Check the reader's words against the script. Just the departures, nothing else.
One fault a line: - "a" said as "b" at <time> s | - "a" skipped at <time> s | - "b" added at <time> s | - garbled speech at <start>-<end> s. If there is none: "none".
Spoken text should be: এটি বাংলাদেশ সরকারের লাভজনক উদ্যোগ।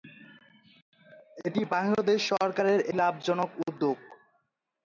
none